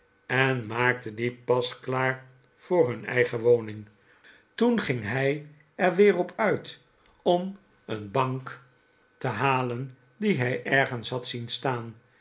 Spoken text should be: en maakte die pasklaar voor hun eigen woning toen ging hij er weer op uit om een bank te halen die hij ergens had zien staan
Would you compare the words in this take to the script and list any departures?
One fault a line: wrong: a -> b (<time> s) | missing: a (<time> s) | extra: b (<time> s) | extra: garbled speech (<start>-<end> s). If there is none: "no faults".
no faults